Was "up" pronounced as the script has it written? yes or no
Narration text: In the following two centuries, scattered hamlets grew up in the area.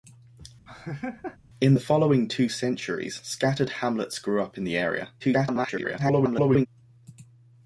yes